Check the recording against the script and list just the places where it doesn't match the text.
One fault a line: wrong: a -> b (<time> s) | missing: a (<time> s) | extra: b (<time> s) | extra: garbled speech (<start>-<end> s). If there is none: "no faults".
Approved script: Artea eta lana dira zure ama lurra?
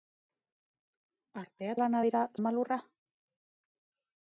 missing: eta (1.8 s)
missing: zure (2.2 s)